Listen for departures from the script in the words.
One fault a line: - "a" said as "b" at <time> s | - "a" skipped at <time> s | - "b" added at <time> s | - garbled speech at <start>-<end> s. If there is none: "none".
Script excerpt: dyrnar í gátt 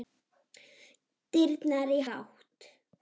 none